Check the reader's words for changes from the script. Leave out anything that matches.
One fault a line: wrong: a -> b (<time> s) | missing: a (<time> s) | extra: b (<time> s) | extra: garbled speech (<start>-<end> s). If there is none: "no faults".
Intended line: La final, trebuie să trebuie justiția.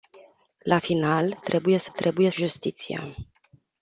no faults